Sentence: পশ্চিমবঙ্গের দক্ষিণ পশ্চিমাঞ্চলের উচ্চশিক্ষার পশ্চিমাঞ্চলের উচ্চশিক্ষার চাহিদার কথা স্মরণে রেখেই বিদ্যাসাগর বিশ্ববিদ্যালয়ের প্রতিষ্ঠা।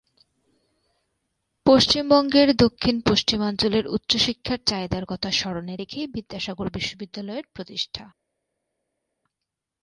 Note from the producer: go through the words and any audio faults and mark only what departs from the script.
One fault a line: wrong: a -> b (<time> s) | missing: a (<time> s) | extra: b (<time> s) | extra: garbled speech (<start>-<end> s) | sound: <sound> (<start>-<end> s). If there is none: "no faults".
missing: পশ্চিমাঞ্চলের উচ্চশিক্ষার (4.6 s)